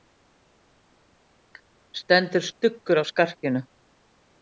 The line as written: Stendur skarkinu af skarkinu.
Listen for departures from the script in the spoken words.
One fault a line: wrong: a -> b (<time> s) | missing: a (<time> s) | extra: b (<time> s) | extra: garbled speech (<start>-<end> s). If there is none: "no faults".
wrong: skarkinu -> stuggur (2.5 s)